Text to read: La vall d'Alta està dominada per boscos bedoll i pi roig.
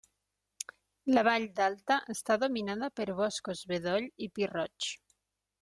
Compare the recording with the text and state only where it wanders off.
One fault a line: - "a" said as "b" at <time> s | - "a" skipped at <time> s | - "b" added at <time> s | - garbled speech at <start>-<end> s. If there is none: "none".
none